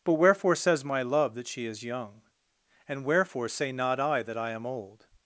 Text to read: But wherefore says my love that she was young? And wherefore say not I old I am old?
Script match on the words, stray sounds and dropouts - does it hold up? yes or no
no